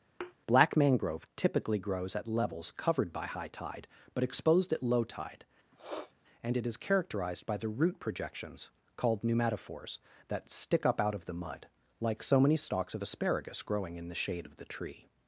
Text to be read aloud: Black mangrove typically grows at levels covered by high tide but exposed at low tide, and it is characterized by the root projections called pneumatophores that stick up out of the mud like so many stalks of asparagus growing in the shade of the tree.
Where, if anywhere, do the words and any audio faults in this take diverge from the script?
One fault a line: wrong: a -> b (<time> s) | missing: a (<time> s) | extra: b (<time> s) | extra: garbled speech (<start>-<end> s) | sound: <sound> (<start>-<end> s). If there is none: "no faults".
sound: thud (0.2-0.3 s)
sound: sniff (5.7-6.1 s)